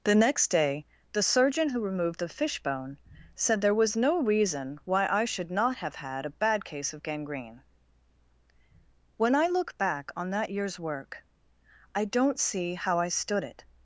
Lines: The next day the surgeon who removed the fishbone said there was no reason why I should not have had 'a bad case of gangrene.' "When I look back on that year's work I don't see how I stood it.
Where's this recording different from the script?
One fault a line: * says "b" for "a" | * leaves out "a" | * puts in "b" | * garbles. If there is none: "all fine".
all fine